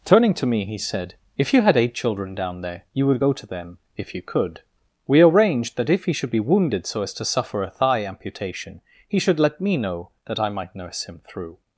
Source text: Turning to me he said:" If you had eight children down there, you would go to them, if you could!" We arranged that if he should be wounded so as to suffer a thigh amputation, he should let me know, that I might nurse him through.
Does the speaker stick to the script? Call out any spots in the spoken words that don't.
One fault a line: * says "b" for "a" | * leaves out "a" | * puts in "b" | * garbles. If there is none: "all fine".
all fine